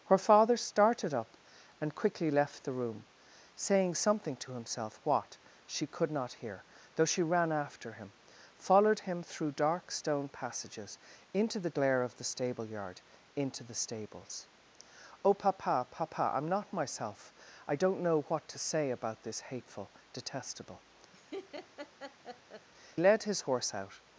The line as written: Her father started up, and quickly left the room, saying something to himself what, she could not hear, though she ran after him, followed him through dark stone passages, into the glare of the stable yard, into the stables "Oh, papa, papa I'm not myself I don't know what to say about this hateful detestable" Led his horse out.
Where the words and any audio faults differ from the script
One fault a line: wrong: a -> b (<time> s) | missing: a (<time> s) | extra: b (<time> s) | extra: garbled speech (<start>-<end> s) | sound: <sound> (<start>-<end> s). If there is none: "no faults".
sound: laugh (21.1-22.7 s)